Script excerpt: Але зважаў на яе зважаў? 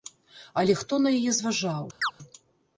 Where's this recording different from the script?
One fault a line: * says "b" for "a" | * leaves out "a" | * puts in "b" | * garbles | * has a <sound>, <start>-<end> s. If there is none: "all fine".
* says "хто" for "зважаў"
* has a chirp, 2.0-2.1 s